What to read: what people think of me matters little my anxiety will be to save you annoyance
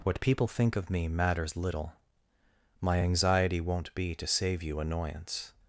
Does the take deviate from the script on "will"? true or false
true